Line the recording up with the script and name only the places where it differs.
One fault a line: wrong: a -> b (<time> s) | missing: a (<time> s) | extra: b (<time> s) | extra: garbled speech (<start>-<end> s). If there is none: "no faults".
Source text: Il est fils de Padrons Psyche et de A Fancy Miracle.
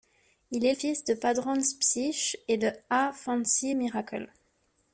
no faults